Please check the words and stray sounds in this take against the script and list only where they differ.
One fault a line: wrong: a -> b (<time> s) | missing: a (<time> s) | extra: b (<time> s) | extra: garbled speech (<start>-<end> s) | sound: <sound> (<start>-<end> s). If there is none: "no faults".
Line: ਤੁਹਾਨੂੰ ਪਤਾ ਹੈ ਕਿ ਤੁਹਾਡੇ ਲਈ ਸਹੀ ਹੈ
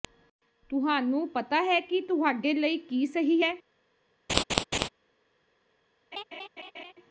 extra: ਕੀ (2.8 s)
sound: laugh (4.3-4.9 s)
sound: laugh (6.1-6.9 s)